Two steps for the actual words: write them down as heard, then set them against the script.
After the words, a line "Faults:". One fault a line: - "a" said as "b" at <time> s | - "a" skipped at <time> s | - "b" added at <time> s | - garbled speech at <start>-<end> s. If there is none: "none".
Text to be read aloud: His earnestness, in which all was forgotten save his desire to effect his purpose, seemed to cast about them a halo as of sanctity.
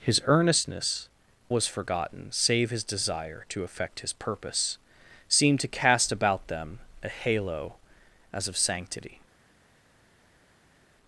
His earnestness, was forgotten save his desire to effect his purpose, seemed to cast about them a halo as of sanctity.
Faults:
- "in which all" skipped at 1.1 s